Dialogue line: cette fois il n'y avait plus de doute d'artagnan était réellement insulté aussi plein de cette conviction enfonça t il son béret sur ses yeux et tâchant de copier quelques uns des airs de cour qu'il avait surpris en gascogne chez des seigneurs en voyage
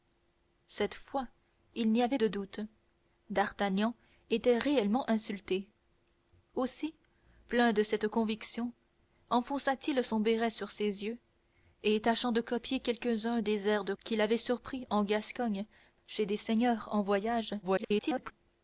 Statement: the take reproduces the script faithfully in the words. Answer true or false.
false